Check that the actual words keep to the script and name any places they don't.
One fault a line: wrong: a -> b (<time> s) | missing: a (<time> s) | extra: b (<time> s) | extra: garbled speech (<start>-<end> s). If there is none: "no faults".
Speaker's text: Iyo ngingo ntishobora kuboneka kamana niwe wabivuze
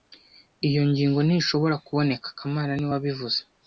no faults